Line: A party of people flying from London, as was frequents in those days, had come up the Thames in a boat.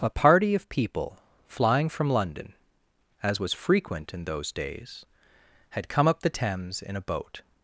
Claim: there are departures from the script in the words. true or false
true